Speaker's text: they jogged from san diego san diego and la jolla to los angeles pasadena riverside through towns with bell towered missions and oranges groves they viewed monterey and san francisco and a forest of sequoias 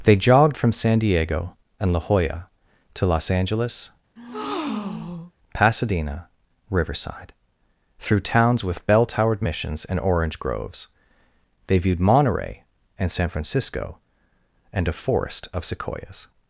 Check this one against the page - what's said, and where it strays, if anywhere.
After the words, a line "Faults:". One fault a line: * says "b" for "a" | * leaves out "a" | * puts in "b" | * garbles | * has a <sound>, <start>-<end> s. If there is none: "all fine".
they jogged from san diego and la jolla to los angeles pasadena riverside through towns with bell towered missions and orange groves they viewed monterey and san francisco and a forest of sequoias
Faults:
* leaves out "san diego"
* has a breath, 4.2-5.3 s
* says "orange" for "oranges"